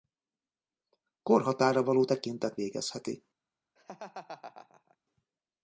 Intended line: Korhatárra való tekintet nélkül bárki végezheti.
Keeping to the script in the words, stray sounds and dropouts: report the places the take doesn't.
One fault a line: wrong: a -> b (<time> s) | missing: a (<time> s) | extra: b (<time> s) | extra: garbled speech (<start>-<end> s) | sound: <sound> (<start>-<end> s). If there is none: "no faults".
missing: nélkül bárki (2.6 s)
sound: laugh (3.8-5.0 s)